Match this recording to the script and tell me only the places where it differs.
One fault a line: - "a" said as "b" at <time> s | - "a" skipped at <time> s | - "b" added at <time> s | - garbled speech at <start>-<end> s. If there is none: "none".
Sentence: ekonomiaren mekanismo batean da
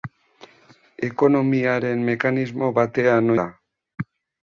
none